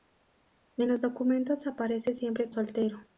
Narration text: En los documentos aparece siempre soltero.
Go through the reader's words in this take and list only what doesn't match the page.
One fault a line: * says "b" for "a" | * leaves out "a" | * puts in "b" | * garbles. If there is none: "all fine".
all fine